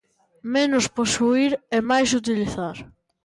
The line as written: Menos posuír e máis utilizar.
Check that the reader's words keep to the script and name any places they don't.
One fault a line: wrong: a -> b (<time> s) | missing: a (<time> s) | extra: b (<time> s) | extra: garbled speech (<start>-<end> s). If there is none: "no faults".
no faults